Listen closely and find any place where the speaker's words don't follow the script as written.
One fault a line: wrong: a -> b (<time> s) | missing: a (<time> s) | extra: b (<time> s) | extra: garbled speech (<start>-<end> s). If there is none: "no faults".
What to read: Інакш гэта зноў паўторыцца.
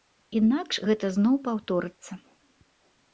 no faults